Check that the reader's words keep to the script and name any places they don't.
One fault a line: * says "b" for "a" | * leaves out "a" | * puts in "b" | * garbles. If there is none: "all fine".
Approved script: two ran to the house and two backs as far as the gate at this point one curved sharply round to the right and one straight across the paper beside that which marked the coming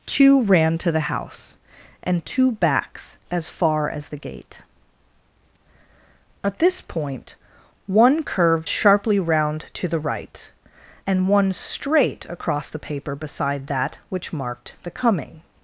all fine